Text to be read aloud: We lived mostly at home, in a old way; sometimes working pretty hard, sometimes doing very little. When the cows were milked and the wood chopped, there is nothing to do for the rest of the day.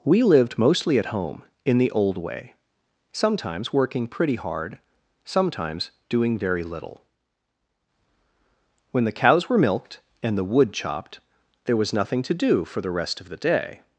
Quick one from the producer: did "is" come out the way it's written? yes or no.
no